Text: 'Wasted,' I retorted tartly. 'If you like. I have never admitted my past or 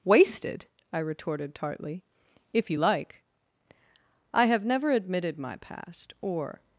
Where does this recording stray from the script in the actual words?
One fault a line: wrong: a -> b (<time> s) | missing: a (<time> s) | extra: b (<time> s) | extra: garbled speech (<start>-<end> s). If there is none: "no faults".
no faults